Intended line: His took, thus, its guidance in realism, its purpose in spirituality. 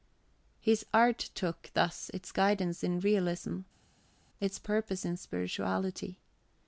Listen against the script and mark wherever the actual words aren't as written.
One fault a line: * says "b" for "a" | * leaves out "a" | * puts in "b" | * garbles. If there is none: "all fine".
* puts in "art"